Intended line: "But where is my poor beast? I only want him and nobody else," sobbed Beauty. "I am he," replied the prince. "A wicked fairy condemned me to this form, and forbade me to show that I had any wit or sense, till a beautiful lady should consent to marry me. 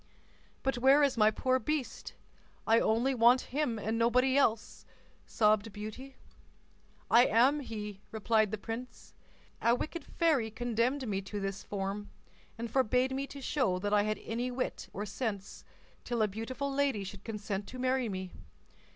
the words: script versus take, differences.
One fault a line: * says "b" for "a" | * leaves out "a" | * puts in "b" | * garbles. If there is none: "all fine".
all fine